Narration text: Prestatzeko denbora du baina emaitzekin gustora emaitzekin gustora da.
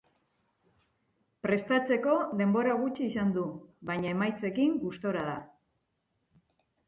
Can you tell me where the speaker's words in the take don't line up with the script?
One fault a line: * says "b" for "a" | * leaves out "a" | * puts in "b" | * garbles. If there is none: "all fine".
* puts in "gutxi izan"
* leaves out "emaitzekin gustora"